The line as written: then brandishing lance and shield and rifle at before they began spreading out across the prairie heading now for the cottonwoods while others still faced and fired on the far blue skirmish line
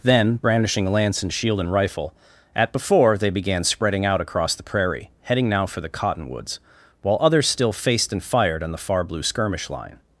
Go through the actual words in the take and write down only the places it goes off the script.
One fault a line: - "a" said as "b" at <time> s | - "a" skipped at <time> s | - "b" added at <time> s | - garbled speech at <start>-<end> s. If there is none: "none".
none